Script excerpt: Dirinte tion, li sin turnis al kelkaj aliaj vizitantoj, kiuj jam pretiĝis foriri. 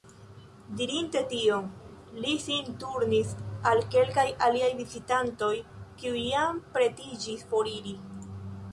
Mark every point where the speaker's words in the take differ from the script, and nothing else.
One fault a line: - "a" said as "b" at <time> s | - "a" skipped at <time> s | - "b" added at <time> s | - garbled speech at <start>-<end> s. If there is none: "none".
none